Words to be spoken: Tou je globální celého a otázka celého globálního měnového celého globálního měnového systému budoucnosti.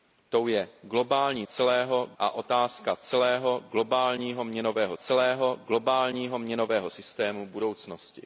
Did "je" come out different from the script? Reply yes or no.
no